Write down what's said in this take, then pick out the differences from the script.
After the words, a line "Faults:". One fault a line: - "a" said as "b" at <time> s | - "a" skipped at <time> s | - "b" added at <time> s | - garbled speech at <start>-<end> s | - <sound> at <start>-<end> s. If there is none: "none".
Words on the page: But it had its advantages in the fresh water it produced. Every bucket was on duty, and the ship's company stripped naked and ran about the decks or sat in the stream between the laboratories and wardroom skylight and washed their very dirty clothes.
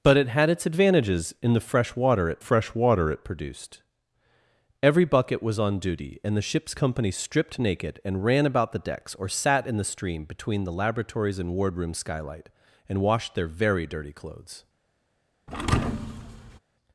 But it had its advantages in the fresh water it fresh water it produced. Every bucket was on duty, and the ship's company stripped naked and ran about the decks or sat in the stream between the laboratories and wardroom skylight and washed their very dirty clothes.
Faults:
- "fresh water it" added at 2.4 s
- thud at 15.5-16.6 s